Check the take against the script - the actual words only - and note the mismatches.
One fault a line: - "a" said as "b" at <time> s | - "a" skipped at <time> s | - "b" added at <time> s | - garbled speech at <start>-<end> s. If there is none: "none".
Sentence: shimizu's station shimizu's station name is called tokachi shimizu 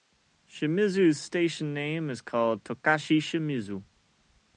- "shimizu's station" skipped at 1.8 s